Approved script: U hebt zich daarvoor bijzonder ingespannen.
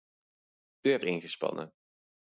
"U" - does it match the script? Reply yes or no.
yes